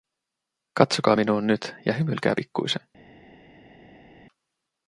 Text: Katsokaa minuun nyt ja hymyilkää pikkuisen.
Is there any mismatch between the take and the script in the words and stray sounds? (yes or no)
no